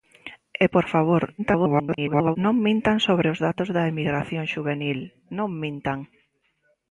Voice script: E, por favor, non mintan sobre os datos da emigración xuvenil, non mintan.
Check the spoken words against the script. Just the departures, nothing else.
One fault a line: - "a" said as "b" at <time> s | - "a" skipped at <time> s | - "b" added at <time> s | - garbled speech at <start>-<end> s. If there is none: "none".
- garbled speech at 1.4-2.4 s